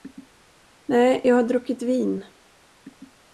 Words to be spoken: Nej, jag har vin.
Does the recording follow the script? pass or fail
fail